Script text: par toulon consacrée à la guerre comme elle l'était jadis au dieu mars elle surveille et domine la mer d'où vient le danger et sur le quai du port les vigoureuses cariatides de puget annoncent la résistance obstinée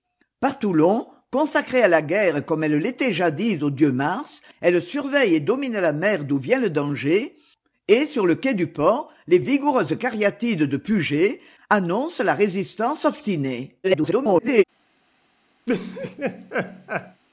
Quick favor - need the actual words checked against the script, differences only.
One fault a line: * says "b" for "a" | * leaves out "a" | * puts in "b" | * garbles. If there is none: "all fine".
* garbles